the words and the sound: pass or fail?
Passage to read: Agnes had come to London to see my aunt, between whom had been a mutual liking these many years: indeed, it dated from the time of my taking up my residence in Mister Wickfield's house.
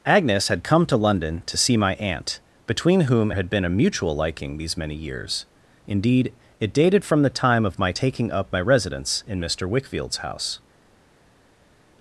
pass